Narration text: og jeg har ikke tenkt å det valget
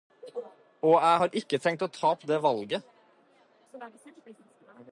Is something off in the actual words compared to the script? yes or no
yes